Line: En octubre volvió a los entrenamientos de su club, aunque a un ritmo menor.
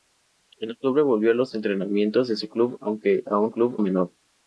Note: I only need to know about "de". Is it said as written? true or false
true